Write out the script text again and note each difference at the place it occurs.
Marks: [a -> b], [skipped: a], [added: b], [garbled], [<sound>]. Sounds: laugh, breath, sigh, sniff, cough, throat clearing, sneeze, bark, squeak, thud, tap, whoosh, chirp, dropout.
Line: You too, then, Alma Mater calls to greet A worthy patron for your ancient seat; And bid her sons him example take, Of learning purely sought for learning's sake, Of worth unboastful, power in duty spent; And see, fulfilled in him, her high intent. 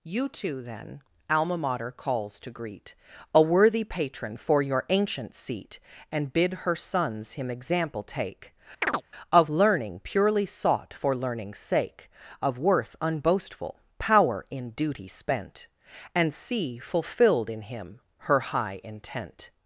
You too, then, Alma Mater calls to greet A worthy patron for your ancient seat; And bid her sons him example take, [chirp] Of learning purely sought for learning's sake, Of worth unboastful, power in duty spent; And see, fulfilled in him, her high intent.